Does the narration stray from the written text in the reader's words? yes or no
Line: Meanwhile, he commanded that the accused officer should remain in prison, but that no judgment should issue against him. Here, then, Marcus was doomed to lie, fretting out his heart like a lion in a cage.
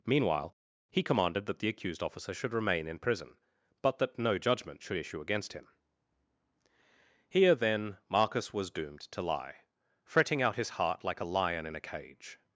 no